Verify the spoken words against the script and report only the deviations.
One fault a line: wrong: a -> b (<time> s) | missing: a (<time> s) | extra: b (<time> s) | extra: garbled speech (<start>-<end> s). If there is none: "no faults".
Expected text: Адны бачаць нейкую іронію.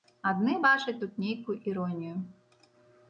extra: тут (1.0 s)